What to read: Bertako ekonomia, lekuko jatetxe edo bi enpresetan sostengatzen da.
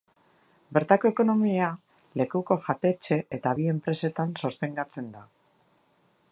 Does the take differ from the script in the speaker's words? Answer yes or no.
yes